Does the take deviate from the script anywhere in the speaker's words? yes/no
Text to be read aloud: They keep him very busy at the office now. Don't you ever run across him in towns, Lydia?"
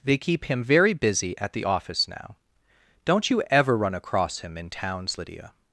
no